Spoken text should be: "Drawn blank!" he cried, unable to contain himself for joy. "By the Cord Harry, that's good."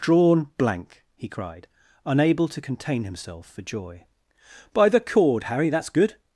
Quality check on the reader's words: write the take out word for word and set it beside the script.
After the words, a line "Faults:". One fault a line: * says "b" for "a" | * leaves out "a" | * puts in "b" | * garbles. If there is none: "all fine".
"Drawn blank!" he cried, unable to contain himself for joy. "By the Cord Harry, that's good."
Faults:
all fine